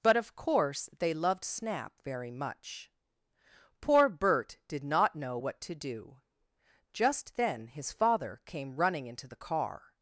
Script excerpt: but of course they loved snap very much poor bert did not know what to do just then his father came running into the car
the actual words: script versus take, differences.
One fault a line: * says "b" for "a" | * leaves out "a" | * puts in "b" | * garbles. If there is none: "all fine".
all fine